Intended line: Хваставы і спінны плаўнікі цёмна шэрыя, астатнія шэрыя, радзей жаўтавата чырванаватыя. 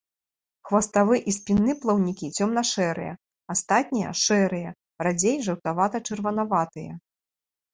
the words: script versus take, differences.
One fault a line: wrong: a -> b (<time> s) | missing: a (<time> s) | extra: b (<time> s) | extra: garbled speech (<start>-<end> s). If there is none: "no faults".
no faults